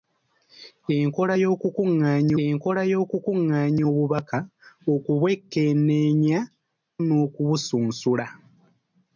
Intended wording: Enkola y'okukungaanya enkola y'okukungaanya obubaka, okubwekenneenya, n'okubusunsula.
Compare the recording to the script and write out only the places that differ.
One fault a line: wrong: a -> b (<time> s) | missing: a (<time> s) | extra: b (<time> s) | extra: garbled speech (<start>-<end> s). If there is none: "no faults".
no faults